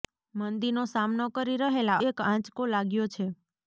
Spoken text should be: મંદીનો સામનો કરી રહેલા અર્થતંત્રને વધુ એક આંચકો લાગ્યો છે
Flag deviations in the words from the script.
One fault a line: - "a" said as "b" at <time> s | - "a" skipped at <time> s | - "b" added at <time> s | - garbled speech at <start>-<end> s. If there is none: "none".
- "અર્થતંત્રને વધુ" skipped at 2.0 s